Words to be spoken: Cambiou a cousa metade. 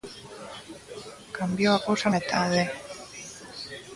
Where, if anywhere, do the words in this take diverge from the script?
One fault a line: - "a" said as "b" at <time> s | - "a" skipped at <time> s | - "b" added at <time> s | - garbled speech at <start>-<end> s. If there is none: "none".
none